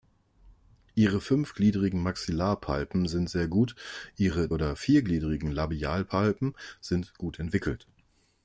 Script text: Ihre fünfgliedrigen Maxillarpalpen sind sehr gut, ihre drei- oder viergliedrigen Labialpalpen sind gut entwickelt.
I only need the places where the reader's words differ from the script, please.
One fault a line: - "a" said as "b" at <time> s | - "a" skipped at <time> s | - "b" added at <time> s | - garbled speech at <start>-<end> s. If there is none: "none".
- "drei" skipped at 4.5 s